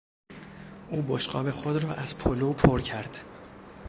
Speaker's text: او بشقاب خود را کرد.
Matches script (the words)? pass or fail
fail